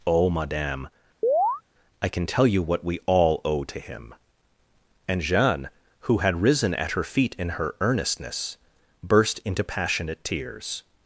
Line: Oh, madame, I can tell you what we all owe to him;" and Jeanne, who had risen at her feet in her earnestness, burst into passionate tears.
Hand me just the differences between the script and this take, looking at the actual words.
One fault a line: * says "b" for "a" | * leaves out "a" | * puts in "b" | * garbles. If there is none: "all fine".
all fine